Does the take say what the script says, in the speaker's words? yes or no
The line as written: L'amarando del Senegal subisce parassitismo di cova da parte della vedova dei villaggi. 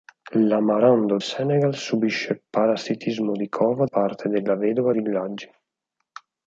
no